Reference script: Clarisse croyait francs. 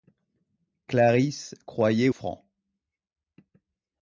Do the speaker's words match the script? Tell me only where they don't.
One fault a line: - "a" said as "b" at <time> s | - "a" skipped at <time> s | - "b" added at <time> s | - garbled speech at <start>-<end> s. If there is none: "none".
none